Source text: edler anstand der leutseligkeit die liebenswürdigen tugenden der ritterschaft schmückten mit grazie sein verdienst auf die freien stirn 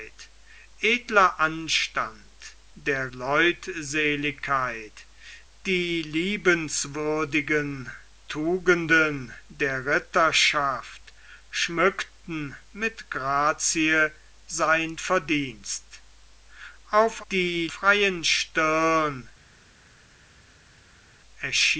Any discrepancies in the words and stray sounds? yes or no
no